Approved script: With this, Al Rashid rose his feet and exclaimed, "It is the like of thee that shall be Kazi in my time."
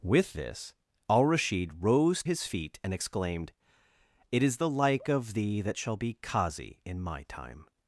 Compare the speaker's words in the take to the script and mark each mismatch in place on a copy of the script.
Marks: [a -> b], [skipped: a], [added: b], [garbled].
With this, Al Rashid rose his feet and exclaimed, "It is the like of thee that shall be Kazi in my time."